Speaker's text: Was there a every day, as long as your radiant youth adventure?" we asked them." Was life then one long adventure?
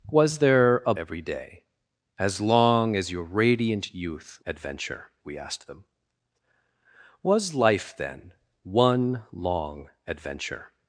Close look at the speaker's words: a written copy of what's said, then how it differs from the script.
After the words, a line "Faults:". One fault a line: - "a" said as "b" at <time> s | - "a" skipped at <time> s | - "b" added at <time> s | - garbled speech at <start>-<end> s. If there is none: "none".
Was there a every day, as long as your radiant youth adventure?" we asked them." Was life then one long adventure?
Faults:
none